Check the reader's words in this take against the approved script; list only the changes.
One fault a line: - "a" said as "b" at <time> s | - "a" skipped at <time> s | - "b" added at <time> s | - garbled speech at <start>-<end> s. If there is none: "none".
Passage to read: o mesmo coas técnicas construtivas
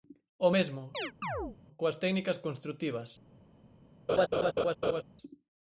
none